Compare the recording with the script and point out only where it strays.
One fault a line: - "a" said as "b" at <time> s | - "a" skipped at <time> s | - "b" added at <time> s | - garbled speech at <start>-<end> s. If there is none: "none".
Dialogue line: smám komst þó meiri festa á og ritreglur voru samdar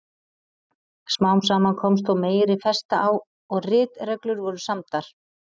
- "saman" added at 1.5 s